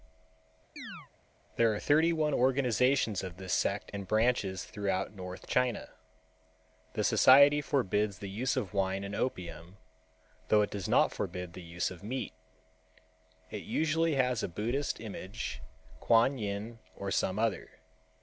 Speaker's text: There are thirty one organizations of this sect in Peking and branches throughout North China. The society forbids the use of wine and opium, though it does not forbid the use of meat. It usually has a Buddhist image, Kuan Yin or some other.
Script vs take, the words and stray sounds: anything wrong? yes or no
yes